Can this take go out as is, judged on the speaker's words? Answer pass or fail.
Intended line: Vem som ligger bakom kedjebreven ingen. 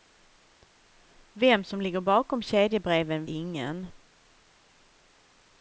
pass